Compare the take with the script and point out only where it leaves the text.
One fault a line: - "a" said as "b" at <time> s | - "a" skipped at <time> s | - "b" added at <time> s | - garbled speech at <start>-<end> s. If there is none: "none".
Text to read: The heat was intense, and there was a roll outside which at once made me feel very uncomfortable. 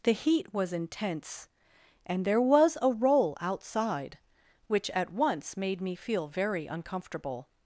none